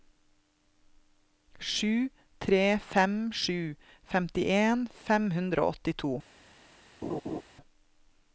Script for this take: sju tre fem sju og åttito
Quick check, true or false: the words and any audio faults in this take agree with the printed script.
false